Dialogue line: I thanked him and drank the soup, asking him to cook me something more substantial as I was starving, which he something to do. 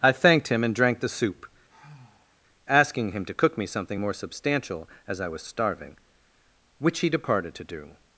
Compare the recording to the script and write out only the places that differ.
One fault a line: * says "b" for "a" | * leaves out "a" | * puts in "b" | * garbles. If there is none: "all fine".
* says "departed" for "something"